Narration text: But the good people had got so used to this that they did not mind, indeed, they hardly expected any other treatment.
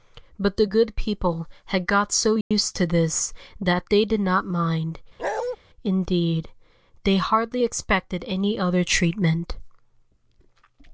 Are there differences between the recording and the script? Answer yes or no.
no